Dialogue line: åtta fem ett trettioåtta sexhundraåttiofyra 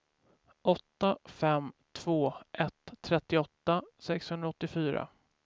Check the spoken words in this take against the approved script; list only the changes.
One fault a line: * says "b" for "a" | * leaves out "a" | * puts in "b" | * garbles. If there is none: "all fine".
* puts in "två"